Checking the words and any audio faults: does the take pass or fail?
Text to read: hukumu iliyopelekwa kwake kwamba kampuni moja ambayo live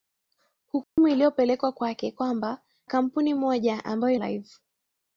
fail